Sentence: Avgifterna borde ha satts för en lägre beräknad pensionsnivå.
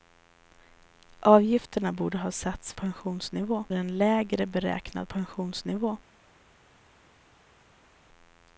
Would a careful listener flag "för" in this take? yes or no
yes